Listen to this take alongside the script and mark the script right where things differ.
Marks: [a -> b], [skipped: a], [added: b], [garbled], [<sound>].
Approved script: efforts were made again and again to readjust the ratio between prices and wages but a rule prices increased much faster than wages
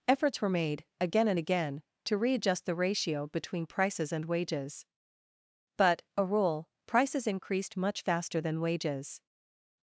efforts were made again and again to readjust the ratio between prices and wages but a rule prices increased much faster than wages